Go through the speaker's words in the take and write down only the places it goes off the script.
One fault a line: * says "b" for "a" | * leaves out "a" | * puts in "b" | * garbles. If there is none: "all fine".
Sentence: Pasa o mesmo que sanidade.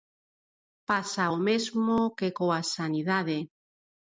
* puts in "coa"